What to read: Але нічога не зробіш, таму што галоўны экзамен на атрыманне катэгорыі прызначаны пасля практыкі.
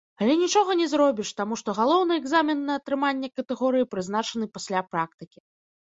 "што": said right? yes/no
yes